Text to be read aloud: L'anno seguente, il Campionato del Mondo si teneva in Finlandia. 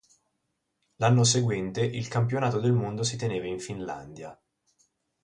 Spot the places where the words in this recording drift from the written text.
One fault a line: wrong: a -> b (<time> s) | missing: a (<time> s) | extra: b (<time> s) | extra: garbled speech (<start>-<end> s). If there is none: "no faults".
no faults